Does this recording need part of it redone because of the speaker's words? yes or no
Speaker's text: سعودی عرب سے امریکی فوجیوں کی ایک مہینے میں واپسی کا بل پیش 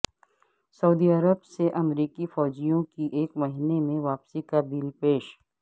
no